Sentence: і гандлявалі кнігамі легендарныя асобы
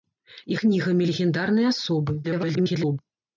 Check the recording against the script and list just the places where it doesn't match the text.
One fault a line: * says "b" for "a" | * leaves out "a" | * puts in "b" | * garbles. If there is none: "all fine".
* leaves out "гандлявалі"
* garbles